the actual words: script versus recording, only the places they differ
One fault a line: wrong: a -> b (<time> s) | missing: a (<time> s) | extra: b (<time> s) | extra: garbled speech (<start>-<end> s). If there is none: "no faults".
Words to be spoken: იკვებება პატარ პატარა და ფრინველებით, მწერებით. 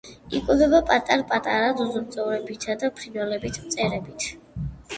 extra: ძუძუმწოვრებითა (1.8 s)